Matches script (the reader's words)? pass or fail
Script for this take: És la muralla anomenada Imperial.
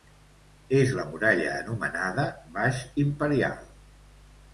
fail